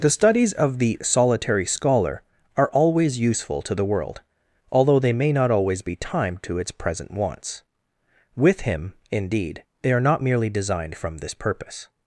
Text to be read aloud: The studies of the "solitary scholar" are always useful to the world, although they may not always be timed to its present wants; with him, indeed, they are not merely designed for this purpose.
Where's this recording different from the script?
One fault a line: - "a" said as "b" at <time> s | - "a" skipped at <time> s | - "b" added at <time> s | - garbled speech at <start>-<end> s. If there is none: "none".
- "for" said as "from" at 11.0 s